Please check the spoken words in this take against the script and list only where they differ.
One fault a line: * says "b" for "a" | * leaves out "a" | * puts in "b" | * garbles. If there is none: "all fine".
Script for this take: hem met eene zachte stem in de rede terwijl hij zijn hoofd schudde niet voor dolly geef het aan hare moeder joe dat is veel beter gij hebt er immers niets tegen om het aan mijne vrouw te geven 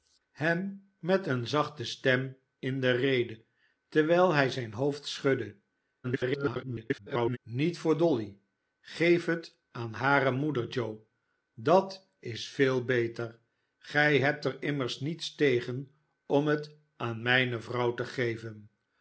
* garbles